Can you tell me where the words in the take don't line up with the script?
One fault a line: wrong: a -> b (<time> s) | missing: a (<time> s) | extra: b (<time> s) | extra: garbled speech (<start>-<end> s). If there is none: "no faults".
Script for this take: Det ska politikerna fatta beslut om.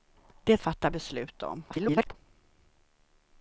missing: ska politikerna (0.6 s)
extra: garbled speech (1.7-2.1 s)